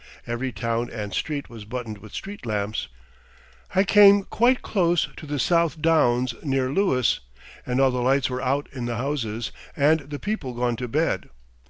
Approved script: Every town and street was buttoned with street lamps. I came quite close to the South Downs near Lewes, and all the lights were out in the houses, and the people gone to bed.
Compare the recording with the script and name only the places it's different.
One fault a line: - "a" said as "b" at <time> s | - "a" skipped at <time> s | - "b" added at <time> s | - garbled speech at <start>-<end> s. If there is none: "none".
none